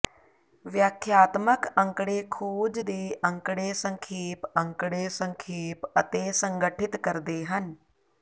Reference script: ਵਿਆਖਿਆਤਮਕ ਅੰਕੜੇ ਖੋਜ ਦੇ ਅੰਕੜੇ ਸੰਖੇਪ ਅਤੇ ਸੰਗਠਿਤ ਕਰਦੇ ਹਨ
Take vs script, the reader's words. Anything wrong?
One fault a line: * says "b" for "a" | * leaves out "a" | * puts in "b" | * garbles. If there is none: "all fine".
* puts in "ਅੰਕੜੇ ਸੰਖੇਪ"